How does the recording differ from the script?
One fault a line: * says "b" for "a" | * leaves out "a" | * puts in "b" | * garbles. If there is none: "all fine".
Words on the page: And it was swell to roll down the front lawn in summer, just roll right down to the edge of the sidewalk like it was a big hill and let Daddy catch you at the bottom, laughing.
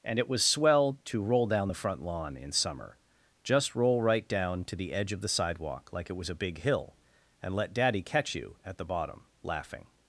all fine